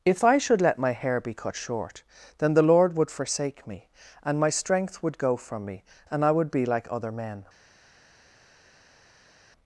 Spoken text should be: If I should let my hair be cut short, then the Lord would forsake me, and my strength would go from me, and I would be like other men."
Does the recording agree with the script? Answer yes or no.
yes